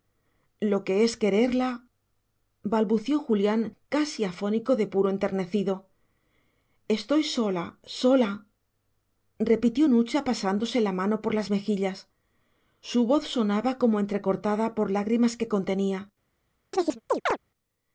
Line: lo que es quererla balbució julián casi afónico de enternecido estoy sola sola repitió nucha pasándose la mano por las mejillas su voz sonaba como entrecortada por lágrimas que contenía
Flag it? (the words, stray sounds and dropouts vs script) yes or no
yes